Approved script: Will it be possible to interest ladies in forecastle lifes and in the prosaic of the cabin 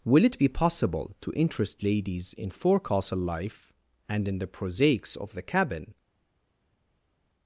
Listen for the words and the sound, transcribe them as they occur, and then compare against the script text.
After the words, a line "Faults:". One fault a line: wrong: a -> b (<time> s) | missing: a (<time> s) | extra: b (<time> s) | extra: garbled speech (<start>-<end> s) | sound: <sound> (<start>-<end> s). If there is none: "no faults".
Will it be possible to interest ladies in forecastle life and in the prosaics of the cabin
Faults:
wrong: lifes -> life (3.2 s)
wrong: prosaic -> prosaics (4.5 s)